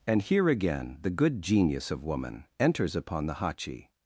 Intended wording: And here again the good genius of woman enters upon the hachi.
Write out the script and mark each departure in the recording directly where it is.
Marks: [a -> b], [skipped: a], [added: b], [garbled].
And here again the good genius of woman enters upon the hachi.